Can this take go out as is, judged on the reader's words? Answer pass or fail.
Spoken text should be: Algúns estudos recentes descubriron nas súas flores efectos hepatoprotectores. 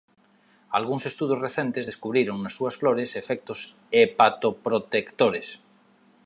pass